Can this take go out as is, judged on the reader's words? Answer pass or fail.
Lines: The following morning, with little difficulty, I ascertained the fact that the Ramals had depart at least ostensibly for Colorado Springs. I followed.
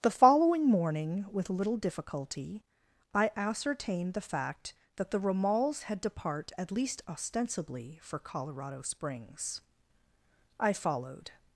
pass